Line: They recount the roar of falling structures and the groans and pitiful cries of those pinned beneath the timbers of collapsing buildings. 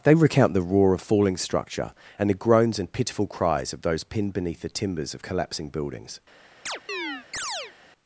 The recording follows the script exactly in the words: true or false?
false